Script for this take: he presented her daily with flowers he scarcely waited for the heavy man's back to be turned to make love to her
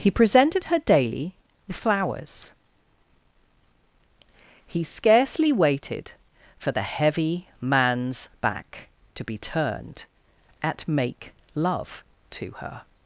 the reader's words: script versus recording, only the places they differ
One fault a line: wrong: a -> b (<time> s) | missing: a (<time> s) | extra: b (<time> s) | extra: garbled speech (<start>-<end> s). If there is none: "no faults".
wrong: to -> at (10.6 s)